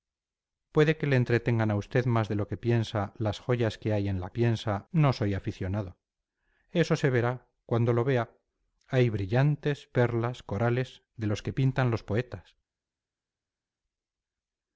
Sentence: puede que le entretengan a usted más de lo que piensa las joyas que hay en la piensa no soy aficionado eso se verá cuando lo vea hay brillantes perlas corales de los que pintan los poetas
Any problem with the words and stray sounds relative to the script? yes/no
no